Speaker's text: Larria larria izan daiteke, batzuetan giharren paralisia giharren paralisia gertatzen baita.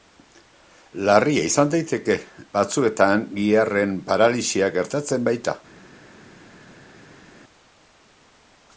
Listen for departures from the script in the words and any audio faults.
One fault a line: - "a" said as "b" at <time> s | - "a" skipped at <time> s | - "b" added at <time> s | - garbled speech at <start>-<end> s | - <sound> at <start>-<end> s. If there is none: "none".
- "larria" skipped at 1.4 s
- "giharren paralisia" skipped at 4.7 s